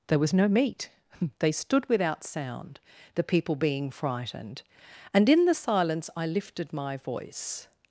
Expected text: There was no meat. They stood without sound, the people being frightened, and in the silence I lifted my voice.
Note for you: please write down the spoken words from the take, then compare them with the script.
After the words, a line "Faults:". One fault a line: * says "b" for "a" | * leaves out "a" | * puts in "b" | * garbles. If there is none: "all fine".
There was no meat. They stood without sound, the people being frightened, and in the silence I lifted my voice.
Faults:
all fine